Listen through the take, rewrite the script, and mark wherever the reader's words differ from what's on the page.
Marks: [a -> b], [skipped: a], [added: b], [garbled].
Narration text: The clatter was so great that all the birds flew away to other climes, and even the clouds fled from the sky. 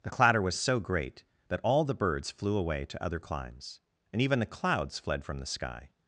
The clatter was so great that all the birds flew away to other climes, and even the clouds fled from the sky.